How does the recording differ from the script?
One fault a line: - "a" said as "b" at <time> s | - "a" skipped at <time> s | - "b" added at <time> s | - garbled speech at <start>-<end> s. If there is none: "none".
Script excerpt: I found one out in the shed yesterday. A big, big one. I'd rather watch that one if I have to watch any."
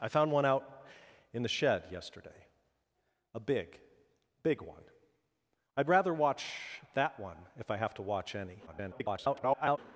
- garbled speech at 8.7-9.8 s